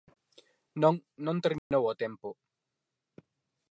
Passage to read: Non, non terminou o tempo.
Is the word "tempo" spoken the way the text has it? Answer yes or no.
yes